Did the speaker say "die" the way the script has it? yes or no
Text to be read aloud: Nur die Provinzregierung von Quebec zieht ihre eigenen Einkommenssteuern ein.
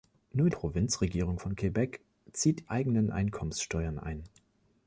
no